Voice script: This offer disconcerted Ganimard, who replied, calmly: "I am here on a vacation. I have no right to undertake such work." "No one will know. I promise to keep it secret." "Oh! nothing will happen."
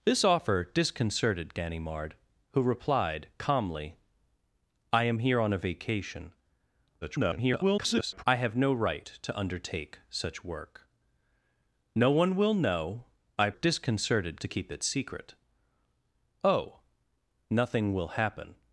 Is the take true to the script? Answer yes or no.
no